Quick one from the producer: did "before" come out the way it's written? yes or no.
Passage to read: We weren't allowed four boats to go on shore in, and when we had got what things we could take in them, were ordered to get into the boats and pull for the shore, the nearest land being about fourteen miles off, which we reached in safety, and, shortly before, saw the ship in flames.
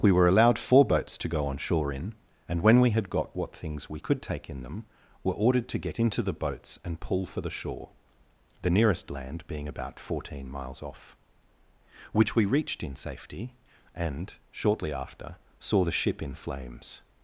no